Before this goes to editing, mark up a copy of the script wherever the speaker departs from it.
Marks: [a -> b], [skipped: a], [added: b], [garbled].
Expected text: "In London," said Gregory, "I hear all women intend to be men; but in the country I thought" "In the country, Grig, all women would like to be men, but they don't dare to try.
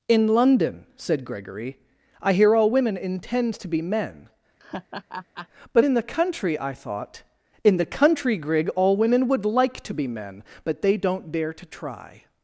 "In London," said Gregory, "I hear all women intend to be men; but in the country I thought" "In the country, Grig, all women would like to be men, but they don't dare to try.